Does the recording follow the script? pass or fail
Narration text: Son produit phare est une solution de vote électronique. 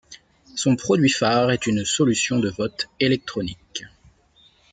pass